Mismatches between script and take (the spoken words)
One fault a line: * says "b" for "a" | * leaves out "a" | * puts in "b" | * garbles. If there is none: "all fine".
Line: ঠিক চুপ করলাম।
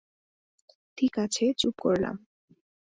* puts in "আছে"